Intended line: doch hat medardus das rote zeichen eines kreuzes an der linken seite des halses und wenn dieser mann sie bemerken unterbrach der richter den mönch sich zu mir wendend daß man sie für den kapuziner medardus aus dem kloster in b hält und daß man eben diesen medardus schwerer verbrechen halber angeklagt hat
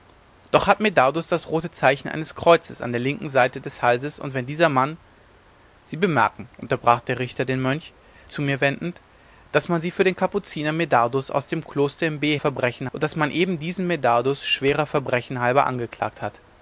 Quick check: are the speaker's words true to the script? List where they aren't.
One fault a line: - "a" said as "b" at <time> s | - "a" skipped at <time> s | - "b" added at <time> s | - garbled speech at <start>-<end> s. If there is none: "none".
- "sich" skipped at 7.9 s
- "hält" said as "verbrechen" at 12.4 s